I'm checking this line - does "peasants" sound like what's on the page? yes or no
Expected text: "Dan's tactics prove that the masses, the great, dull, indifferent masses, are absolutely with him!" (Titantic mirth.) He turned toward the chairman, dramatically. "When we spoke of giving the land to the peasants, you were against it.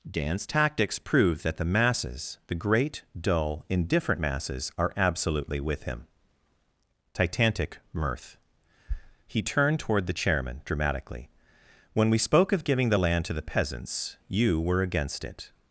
yes